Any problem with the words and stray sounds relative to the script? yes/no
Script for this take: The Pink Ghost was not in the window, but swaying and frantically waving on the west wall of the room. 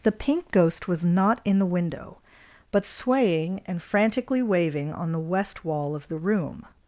no